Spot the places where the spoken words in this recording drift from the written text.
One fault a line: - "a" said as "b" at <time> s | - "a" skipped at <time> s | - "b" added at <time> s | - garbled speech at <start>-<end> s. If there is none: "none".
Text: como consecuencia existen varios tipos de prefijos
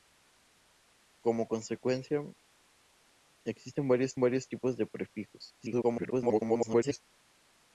- "varios" added at 4.2 s
- garbled speech at 5.6-7.0 s